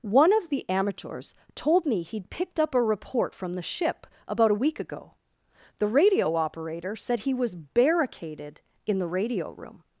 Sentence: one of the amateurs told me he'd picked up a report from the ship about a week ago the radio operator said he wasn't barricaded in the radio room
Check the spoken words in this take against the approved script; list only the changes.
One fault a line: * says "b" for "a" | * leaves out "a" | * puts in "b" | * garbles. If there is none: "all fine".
* says "was" for "wasn't"